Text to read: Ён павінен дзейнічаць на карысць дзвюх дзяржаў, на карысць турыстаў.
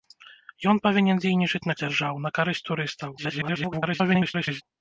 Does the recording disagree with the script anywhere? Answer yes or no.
yes